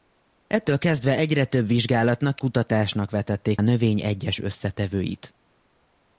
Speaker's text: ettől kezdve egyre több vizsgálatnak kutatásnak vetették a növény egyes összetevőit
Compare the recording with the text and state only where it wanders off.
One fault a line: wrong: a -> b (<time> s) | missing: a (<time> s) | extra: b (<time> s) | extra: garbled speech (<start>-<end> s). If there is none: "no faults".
no faults